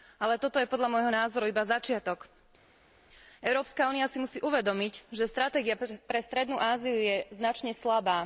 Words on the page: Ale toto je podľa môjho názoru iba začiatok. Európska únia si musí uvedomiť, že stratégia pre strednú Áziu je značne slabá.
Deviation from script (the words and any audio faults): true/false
false